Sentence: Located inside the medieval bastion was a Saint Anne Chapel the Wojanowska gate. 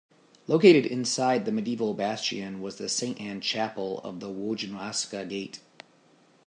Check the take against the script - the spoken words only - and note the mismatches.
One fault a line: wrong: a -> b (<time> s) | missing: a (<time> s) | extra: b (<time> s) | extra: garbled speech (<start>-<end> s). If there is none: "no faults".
wrong: a -> the (2.8 s)
extra: of (4.0 s)